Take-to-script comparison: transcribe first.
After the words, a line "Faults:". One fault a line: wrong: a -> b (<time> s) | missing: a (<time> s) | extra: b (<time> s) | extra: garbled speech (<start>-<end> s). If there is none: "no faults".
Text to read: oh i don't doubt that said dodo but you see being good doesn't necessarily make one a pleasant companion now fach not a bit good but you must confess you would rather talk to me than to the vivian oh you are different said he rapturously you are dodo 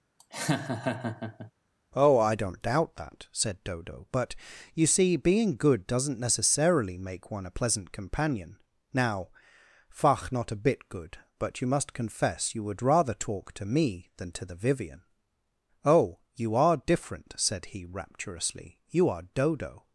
oh i don't doubt that said dodo but you see being good doesn't necessarily make one a pleasant companion now fach not a bit good but you must confess you would rather talk to me than to the vivian oh you are different said he rapturously you are dodo
Faults:
no faults